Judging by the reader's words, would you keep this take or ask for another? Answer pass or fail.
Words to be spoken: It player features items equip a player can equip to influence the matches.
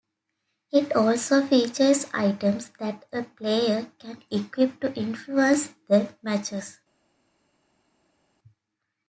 fail